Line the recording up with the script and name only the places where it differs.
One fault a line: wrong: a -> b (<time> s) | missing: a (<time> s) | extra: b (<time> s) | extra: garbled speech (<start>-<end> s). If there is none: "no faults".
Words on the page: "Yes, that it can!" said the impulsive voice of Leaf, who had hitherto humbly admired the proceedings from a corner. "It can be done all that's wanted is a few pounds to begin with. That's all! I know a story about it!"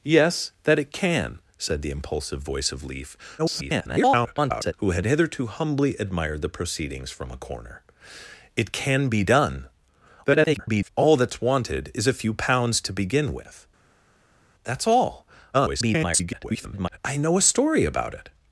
extra: garbled speech (3.4-4.7 s)
extra: garbled speech (10.2-10.9 s)
extra: garbled speech (15.5-17.0 s)